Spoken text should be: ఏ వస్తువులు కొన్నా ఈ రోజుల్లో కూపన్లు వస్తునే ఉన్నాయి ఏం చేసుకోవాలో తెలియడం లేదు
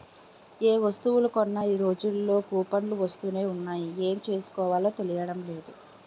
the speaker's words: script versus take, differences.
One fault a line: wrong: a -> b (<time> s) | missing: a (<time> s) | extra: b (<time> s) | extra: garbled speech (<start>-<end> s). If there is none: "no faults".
no faults